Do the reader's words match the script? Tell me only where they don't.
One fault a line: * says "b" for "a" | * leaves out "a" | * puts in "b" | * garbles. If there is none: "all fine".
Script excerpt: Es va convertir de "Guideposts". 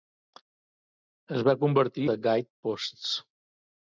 all fine